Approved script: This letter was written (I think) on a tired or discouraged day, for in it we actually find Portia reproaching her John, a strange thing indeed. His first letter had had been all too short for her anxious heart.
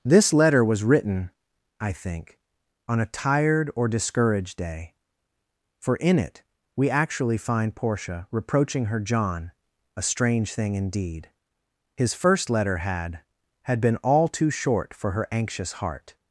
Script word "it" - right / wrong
right